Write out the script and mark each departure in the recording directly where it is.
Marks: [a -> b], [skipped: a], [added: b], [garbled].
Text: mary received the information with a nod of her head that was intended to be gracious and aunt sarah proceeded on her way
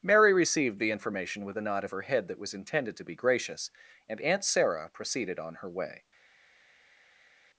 mary received the information with a nod of her head that was intended to be gracious and aunt sarah proceeded on her way